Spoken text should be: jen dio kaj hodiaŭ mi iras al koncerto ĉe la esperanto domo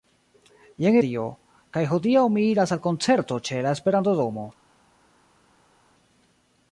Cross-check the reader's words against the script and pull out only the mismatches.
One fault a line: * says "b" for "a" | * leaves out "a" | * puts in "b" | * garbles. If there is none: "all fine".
all fine